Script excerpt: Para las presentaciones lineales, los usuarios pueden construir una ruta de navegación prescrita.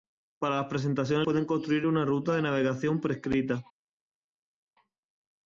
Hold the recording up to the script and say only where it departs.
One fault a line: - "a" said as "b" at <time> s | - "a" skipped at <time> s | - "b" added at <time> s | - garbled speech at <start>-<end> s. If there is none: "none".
- "lineales los usuarios" skipped at 1.3 s